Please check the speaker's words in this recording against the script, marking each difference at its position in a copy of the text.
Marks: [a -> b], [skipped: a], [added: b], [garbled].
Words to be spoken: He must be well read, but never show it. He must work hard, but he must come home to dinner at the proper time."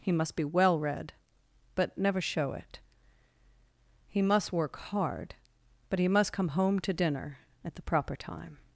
He must be well read, but never show it. He must work hard, but he must come home to dinner at the proper time."